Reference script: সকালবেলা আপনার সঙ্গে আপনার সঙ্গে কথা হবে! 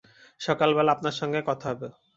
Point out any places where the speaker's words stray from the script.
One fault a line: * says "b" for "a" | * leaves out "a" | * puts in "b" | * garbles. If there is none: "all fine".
* leaves out "আপনার সঙ্গে"